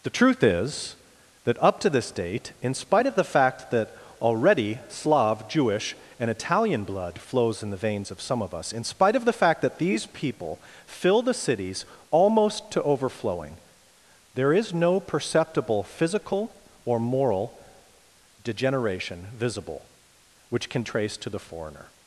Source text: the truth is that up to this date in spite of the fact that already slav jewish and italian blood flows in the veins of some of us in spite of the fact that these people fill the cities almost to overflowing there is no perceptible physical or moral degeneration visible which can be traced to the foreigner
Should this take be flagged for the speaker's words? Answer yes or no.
yes